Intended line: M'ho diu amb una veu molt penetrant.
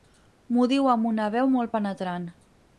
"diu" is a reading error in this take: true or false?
false